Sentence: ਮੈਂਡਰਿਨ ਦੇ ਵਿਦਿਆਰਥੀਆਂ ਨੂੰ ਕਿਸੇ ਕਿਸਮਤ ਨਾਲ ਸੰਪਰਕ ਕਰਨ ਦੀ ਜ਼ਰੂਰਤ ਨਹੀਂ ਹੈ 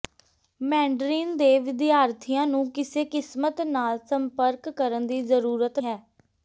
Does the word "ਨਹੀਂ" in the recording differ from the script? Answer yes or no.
yes